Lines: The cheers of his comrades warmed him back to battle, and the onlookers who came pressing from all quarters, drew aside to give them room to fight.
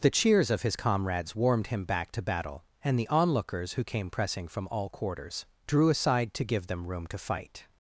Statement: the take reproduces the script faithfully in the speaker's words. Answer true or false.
true